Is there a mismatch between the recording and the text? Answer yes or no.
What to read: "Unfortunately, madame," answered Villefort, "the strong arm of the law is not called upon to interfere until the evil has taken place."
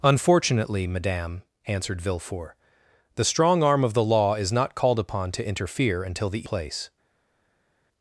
yes